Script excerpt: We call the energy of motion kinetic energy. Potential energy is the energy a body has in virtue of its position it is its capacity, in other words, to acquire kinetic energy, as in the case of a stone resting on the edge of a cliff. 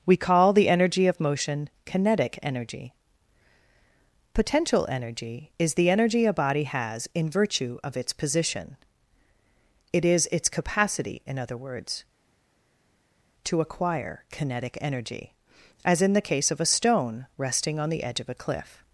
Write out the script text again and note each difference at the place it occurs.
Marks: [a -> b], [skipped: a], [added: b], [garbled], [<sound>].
We call the energy of motion kinetic energy. Potential energy is the energy a body has in virtue of its position it is its capacity, in other words, to acquire kinetic energy, as in the case of a stone resting on the edge of a cliff.